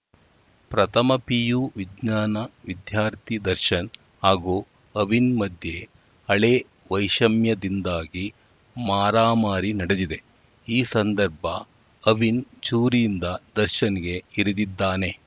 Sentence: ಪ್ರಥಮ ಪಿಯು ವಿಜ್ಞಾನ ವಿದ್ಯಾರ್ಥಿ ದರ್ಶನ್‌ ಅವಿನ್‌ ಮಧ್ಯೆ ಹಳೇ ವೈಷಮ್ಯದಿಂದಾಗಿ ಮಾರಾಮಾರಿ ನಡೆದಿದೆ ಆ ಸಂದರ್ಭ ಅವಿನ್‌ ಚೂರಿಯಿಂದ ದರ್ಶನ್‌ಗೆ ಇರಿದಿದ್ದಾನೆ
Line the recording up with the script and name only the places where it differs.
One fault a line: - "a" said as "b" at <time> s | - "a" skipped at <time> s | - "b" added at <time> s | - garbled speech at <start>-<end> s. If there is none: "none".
- "ಹಾಗೂ" added at 4.2 s
- "ಆ" said as "ಈ" at 10.7 s